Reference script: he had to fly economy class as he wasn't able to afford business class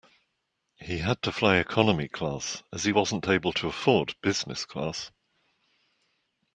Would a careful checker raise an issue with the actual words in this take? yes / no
no